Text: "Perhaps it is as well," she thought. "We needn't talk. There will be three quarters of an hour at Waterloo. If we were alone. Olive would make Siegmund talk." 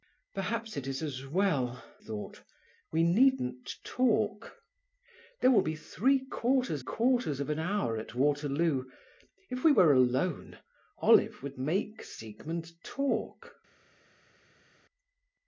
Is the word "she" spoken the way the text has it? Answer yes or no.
no